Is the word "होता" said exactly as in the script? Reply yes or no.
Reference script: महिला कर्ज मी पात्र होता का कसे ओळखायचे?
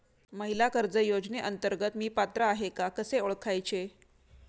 no